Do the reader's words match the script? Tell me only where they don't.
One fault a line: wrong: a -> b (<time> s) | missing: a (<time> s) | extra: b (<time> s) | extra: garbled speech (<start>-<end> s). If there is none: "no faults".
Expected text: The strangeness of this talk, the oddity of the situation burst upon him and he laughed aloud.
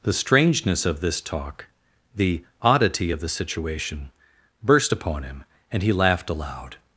no faults